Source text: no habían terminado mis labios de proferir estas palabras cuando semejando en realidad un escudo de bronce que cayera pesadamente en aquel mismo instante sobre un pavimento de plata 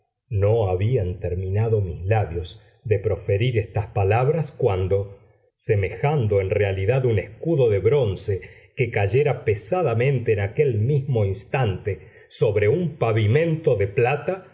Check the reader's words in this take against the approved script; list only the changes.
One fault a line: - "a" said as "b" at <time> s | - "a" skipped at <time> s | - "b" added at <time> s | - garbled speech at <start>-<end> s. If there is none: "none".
none